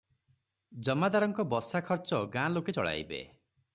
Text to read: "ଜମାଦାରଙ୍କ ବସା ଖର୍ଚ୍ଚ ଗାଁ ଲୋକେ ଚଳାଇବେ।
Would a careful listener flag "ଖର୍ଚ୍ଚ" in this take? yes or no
no